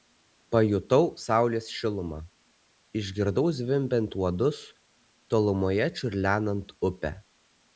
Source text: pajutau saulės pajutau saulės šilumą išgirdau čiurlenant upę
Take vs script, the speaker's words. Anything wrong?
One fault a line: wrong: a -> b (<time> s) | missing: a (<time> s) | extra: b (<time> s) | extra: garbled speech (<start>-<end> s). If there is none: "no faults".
wrong: pajutau saulės šilumą išgirdau -> šilumą išgirdau zvimbiant uodus tolumoje (1.8 s)